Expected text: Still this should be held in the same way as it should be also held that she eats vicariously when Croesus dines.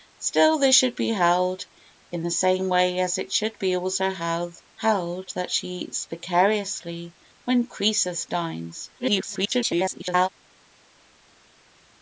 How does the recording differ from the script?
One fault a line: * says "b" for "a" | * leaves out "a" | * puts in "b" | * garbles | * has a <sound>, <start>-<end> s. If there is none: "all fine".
* garbles